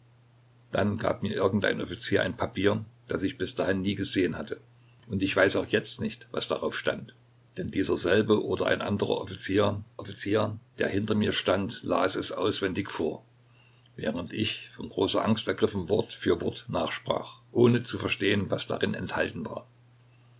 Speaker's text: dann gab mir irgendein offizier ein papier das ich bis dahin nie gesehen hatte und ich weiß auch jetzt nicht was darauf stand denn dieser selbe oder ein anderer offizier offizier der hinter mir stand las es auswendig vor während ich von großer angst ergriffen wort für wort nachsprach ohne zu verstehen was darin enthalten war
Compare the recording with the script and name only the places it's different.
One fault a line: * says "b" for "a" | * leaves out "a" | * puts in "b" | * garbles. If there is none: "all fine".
all fine